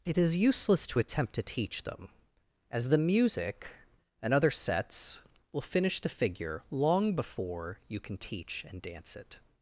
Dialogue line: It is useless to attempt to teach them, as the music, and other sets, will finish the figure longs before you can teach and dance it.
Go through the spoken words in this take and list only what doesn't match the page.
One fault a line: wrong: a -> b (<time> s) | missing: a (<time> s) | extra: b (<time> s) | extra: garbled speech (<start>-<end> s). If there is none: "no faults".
wrong: longs -> long (6.7 s)